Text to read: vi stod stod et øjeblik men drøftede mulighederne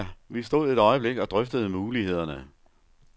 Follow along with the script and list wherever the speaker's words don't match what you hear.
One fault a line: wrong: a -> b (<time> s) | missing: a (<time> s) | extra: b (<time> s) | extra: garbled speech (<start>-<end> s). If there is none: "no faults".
missing: stod (0.7 s)
wrong: men -> og (1.2 s)